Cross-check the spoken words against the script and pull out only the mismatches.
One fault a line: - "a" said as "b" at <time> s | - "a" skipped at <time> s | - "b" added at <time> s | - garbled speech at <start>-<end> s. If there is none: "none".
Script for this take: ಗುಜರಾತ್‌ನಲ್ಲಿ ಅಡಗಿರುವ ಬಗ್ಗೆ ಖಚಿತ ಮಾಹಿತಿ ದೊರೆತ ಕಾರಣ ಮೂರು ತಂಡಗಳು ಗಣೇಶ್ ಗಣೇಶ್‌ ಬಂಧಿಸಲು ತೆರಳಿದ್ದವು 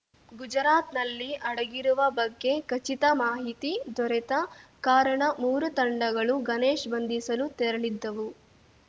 - "ಗಣೇಶ್" skipped at 6.9 s